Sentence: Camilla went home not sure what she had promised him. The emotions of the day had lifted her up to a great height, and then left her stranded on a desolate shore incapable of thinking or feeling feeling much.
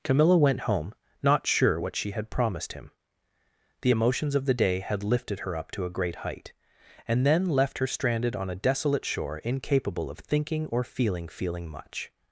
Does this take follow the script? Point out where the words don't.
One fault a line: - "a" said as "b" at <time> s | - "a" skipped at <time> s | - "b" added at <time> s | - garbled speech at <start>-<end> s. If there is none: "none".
none